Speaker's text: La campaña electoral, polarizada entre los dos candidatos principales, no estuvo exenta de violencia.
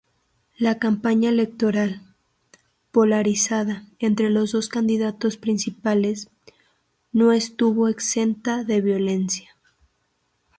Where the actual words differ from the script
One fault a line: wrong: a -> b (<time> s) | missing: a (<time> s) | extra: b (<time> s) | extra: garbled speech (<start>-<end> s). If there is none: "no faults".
no faults